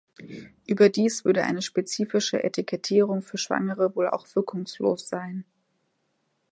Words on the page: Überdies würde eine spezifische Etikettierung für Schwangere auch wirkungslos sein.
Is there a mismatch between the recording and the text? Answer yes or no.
yes